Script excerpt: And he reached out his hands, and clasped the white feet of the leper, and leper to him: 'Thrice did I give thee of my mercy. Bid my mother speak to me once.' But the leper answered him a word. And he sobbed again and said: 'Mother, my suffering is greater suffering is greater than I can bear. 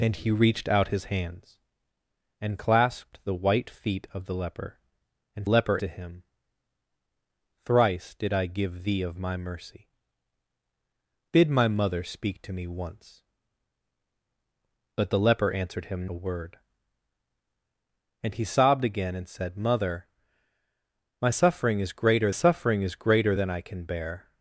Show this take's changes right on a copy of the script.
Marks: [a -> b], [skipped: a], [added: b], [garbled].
And he reached out his hands, and clasped the white feet of the leper, and leper to him: 'Thrice did I give thee of my mercy. Bid my mother speak to me once.' But the leper answered him a word. And he sobbed again and said: 'Mother, my suffering is greater suffering is greater than I can bear.